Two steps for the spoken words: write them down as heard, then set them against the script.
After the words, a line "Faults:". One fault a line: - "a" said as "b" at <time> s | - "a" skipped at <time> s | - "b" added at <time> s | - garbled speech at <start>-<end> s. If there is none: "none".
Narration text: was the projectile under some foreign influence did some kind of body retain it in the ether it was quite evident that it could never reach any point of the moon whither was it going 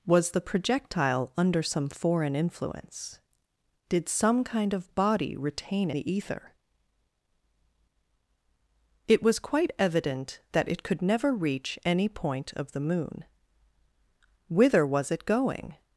was the projectile under some foreign influence did some kind of body retain the ether it was quite evident that it could never reach any point of the moon whither was it going
Faults:
- "it in" skipped at 5.9 s